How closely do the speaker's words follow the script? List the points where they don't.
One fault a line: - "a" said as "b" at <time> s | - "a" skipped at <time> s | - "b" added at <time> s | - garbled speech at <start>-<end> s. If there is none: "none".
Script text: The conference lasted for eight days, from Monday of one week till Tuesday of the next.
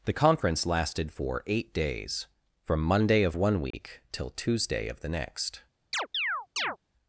none